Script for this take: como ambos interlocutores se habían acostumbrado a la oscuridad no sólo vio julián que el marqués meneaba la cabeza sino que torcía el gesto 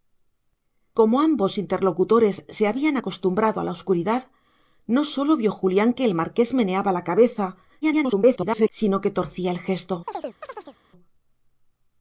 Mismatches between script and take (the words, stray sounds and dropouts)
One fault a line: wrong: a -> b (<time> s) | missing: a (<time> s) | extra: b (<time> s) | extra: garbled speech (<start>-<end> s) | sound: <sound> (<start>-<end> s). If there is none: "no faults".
extra: garbled speech (7.8-8.7 s)
sound: chirp (10.1-10.8 s)